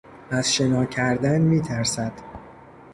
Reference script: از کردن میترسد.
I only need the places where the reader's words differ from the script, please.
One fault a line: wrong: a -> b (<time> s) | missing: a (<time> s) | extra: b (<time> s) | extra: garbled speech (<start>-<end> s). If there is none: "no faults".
extra: شنا (0.5 s)